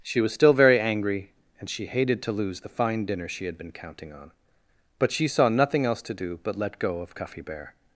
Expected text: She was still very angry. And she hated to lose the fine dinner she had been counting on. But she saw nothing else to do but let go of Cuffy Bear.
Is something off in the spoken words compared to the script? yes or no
no